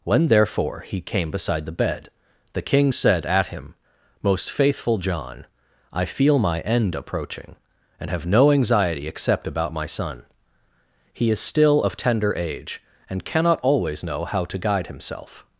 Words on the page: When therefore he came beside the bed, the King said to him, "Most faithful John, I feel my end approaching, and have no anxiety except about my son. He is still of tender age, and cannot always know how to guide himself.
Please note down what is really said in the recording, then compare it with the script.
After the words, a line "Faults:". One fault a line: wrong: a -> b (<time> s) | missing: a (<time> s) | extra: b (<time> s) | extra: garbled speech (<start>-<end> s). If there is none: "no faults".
When therefore he came beside the bed, the King said at him, "Most faithful John, I feel my end approaching, and have no anxiety except about my son. He is still of tender age, and cannot always know how to guide himself.
Faults:
wrong: to -> at (3.3 s)